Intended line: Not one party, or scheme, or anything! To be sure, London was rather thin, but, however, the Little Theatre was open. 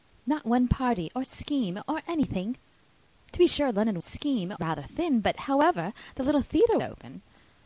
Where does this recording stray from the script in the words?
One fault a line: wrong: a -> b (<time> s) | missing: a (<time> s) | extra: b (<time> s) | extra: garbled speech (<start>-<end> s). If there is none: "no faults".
wrong: was -> scheme (4.0 s)
missing: was (6.8 s)